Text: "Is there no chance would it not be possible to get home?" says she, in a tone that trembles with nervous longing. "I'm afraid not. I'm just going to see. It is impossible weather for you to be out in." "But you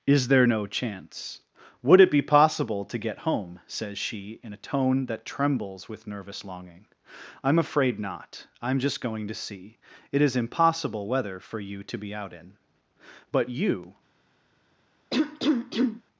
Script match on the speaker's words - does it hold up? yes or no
no